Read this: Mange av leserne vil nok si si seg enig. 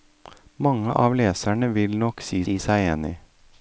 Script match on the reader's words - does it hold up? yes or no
yes